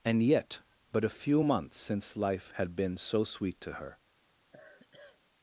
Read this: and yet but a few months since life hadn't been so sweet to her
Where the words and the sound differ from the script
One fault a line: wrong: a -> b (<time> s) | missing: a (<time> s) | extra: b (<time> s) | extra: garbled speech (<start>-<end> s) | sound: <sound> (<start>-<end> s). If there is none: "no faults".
wrong: hadn't -> had (2.5 s)
sound: sigh (4.5-5.2 s)